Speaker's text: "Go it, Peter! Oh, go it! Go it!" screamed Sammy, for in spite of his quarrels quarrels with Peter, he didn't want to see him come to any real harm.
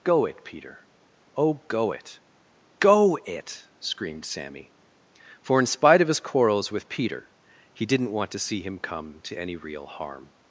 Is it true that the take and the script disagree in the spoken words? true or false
true